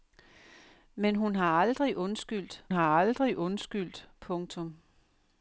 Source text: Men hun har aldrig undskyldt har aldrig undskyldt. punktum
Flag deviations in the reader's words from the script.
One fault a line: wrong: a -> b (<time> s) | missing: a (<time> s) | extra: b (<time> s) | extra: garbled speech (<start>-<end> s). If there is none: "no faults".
no faults